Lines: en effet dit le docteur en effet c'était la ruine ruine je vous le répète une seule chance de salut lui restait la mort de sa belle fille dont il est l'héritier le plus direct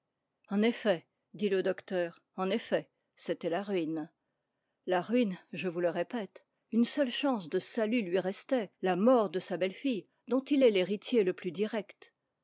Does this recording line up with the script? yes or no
no